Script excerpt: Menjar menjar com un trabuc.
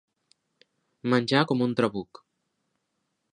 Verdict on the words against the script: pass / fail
fail